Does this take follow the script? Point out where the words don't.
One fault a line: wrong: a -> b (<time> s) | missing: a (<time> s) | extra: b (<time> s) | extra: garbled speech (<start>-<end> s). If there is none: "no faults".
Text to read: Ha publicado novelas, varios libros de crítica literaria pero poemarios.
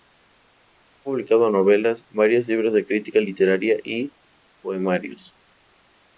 wrong: pero -> y (3.8 s)